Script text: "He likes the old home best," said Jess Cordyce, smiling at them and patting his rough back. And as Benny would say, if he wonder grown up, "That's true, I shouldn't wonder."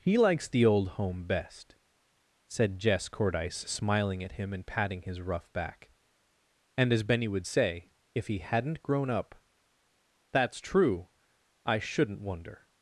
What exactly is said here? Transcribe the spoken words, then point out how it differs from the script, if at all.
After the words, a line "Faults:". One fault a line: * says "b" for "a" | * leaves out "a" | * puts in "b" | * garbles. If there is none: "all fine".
"He likes the old home best," said Jess Cordyce, smiling at him and patting his rough back. And as Benny would say, if he hadn't grown up, "That's true, I shouldn't wonder."
Faults:
* says "him" for "them"
* says "hadn't" for "wonder"